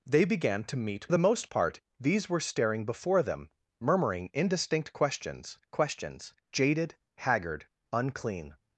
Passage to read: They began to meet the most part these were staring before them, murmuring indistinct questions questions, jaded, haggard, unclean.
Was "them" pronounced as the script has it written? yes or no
yes